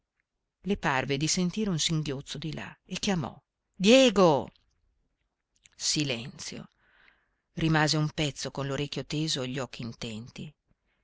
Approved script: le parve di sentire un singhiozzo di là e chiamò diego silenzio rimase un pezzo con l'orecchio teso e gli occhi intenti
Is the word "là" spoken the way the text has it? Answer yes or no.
yes